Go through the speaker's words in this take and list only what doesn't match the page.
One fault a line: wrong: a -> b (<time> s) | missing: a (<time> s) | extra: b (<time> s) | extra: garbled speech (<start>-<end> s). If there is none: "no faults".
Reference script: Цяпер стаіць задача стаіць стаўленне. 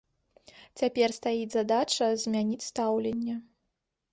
wrong: стаіць -> змяніць (2.2 s)